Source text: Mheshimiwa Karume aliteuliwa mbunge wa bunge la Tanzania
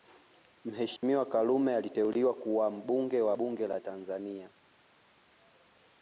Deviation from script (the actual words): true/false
true